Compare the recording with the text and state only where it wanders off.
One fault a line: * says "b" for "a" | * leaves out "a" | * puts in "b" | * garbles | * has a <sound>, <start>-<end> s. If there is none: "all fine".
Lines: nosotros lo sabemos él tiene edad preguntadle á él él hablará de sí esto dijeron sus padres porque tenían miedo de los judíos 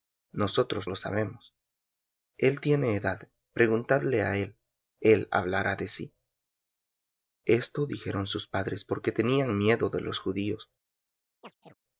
* has a chirp, 11.4-11.7 s